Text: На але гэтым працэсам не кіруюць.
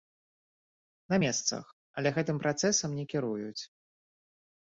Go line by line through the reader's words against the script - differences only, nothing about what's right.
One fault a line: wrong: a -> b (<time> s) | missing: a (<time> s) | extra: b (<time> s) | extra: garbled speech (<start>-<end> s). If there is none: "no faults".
extra: месцах (1.2 s)